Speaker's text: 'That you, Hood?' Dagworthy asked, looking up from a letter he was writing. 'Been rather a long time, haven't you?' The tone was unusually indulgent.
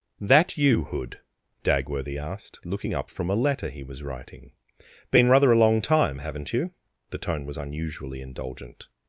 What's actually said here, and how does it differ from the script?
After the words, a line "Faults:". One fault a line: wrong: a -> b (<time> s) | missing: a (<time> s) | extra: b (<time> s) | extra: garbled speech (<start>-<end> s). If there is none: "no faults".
'That you, Hood?' Dagworthy asked, looking up from a letter he was writing. 'Been rather a long time, haven't you?' The tone was unusually indulgent.
Faults:
no faults